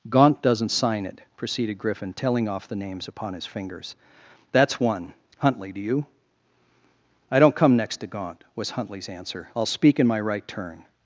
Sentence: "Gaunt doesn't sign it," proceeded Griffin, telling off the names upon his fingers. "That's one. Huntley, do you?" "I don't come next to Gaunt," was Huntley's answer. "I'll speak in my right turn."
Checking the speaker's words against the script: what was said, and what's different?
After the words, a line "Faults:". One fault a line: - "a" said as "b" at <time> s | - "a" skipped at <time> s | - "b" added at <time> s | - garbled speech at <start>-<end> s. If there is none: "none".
"Gaunt doesn't sign it," proceeded Griffin, telling off the names upon his fingers. "That's one. Huntley, do you?" "I don't come next to Gaunt," was Huntley's answer. "I'll speak in my right turn."
Faults:
none